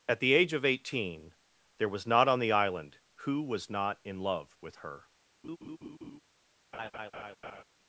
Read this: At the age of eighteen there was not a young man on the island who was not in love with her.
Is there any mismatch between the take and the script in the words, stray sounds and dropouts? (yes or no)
yes